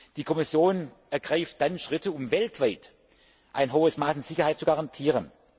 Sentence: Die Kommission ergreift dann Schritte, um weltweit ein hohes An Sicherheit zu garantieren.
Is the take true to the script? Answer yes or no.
no